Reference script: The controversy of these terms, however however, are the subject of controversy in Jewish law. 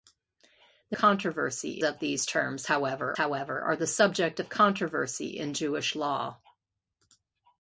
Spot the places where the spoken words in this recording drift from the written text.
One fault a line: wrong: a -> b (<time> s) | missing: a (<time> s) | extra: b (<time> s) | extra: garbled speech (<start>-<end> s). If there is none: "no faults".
no faults